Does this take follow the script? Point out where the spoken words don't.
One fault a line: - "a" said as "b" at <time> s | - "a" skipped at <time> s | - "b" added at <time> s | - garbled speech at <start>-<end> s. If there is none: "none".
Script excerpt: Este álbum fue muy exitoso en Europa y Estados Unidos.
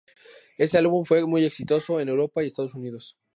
none